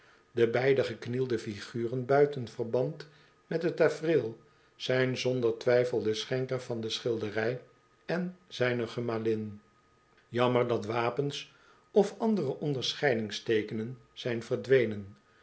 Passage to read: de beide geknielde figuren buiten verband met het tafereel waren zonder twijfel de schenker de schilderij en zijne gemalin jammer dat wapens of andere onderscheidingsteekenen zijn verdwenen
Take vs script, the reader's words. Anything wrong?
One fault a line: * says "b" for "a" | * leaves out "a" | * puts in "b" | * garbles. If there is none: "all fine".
* says "zijn" for "waren"
* puts in "van"